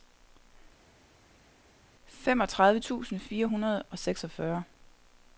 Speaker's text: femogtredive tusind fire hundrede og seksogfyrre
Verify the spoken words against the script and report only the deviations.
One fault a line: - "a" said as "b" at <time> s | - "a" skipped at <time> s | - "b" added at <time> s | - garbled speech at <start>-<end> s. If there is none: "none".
none